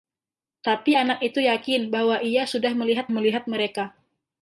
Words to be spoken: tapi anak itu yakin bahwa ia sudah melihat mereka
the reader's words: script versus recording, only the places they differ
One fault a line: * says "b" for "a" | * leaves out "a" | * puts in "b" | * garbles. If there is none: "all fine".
* puts in "melihat"